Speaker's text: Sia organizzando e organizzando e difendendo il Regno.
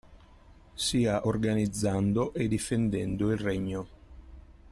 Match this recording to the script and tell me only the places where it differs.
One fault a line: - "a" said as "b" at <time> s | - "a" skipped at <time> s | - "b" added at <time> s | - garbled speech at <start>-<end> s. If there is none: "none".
- "organizzando e" skipped at 2.5 s